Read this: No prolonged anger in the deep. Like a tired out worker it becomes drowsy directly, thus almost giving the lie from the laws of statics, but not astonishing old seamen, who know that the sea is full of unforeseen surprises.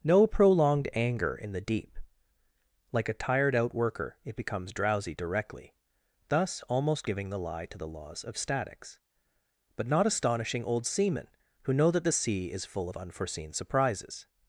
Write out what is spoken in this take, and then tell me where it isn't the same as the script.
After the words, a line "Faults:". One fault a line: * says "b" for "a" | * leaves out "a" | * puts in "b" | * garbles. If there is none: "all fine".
No prolonged anger in the deep. Like a tired out worker it becomes drowsy directly, thus almost giving the lie to the laws of statics, but not astonishing old seamen, who know that the sea is full of unforeseen surprises.
Faults:
* says "to" for "from"